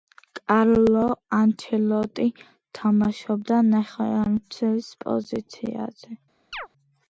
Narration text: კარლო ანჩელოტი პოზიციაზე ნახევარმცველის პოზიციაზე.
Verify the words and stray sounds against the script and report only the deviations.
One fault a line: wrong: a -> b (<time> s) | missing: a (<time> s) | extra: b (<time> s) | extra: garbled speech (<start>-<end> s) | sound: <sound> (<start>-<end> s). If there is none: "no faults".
wrong: პოზიციაზე -> თამაშობდა (2.8 s)
sound: chirp (6.5-6.7 s)